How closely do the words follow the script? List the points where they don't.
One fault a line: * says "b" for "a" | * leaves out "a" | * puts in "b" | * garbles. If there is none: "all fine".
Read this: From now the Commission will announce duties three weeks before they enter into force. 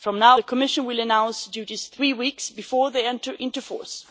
all fine